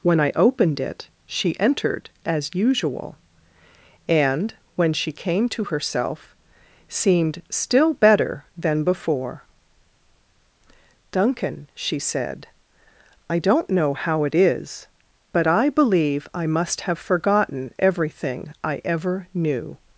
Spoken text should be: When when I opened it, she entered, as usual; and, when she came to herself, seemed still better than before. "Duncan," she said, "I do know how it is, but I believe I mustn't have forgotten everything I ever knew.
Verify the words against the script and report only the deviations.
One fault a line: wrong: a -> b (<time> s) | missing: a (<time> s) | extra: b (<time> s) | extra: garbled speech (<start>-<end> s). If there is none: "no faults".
missing: when (0.2 s)
wrong: do -> don't (13.4 s)
wrong: mustn't -> must (16.5 s)